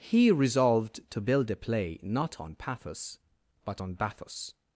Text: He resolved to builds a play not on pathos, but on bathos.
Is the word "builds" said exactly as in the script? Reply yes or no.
no